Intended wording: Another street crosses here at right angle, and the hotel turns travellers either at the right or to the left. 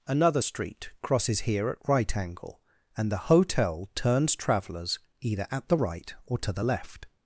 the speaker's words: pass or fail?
pass